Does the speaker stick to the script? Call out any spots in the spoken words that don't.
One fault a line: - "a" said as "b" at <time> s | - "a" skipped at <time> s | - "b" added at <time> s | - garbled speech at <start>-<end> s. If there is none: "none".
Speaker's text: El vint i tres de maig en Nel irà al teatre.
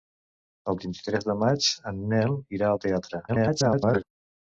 - garbled speech at 3.3-4.0 s